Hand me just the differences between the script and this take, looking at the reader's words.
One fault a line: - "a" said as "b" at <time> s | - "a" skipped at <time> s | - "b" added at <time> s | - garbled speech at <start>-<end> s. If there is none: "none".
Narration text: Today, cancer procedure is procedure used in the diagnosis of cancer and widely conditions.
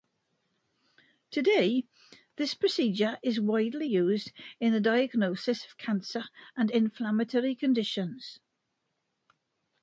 - "cancer" said as "this" at 2.4 s
- "procedure" said as "widely" at 3.4 s
- "widely" said as "inflammatory" at 6.7 s